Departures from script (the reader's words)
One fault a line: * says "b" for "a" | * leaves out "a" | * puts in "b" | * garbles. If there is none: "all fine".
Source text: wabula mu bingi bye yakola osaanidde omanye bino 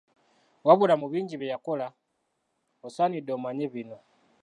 all fine